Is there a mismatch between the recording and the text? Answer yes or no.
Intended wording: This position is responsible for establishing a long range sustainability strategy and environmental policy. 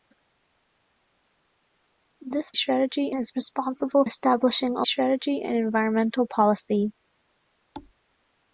yes